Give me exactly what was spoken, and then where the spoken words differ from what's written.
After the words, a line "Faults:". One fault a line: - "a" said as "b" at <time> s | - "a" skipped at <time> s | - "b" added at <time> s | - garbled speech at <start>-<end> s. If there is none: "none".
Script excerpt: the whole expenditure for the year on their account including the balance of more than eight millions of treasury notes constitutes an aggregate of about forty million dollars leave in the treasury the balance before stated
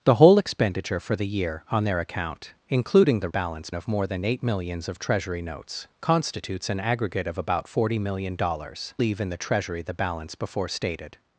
the whole expenditure for the year on their account including the balance of more than eight millions of treasury notes constitutes an aggregate of about forty million dollars leave in the treasury the balance before stated
Faults:
none